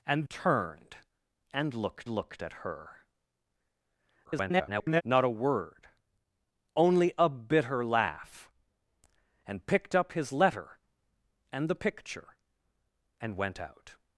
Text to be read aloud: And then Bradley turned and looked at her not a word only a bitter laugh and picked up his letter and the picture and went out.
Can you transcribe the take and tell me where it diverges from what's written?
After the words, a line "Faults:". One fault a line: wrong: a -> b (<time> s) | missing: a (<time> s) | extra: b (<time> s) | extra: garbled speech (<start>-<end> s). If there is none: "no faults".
And turned and looked looked at her [garbled] not a word only a bitter laugh and picked up his letter and the picture and went out.
Faults:
missing: then Bradley (0.3 s)
extra: looked (2.1 s)
extra: garbled speech (4.2-5.0 s)